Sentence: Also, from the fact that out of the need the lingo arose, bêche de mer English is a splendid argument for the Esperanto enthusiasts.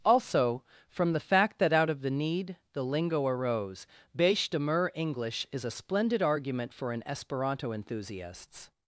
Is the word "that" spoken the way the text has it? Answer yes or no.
yes